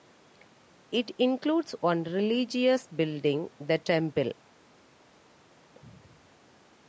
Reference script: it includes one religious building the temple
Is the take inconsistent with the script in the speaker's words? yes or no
no